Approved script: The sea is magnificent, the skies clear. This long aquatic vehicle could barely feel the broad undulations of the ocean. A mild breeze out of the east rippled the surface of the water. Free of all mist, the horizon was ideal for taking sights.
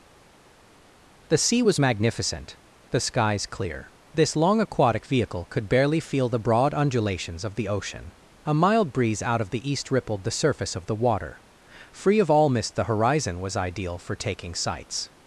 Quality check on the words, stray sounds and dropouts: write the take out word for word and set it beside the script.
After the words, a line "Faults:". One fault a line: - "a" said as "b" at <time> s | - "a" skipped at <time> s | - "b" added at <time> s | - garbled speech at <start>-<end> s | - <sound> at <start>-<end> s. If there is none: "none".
The sea was magnificent, the skies clear. This long aquatic vehicle could barely feel the broad undulations of the ocean. A mild breeze out of the east rippled the surface of the water. Free of all mist, the horizon was ideal for taking sights.
Faults:
- "is" said as "was" at 1.6 s